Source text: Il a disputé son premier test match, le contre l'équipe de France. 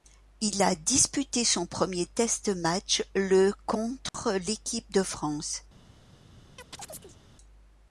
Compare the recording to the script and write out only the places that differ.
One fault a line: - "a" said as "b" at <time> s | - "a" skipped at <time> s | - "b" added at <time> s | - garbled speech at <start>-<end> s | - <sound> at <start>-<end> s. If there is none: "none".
- dropout at 4.1-4.1 s
- chirp at 6.6-7.2 s